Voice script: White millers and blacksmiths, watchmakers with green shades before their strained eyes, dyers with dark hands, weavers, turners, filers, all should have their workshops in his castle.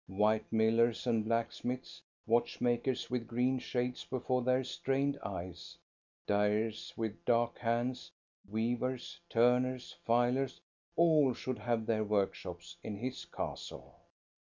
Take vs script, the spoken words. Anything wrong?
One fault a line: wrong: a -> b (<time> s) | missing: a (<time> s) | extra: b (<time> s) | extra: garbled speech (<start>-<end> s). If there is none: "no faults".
no faults